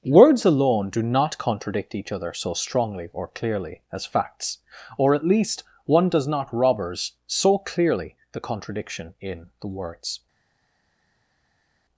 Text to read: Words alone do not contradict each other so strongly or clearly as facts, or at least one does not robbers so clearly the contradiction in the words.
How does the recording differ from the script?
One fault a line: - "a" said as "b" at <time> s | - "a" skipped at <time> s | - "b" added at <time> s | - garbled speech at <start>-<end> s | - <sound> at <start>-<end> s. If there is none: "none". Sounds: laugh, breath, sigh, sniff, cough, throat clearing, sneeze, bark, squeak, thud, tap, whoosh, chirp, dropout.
none